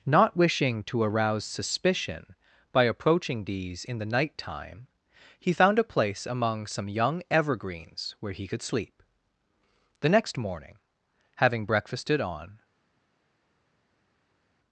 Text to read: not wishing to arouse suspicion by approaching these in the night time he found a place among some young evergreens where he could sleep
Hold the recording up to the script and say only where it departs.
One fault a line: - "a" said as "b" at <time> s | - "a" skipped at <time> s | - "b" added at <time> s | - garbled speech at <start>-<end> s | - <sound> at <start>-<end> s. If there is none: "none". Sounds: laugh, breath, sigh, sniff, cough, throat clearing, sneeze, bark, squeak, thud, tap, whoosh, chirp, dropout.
- "the next morning having breakfasted on" added at 10.0 s